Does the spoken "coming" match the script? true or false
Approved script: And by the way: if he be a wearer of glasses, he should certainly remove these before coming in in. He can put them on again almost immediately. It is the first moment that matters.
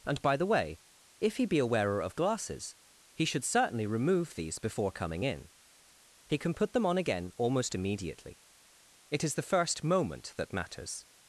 true